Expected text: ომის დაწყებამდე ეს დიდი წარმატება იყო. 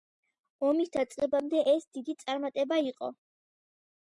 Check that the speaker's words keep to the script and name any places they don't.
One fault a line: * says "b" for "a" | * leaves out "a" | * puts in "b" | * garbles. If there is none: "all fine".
all fine